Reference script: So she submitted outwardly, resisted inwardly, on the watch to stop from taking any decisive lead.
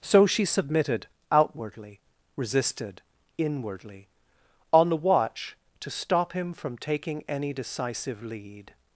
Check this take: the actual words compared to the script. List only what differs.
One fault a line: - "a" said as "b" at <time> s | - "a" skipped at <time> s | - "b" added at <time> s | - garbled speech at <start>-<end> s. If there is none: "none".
- "him" added at 6.3 s